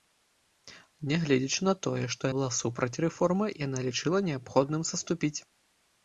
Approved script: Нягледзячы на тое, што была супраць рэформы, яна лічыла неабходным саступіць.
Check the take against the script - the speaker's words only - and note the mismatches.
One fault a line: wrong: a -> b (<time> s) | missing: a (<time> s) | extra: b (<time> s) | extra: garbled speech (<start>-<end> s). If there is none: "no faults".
no faults